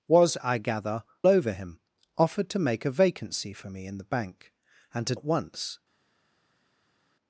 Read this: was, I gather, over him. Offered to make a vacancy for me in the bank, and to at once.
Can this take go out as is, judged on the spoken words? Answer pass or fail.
pass